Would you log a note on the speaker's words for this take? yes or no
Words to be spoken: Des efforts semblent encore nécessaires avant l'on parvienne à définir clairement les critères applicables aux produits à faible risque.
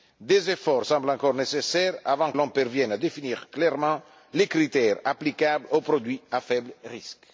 no